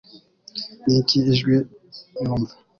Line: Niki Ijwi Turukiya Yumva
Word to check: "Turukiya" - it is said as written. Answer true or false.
false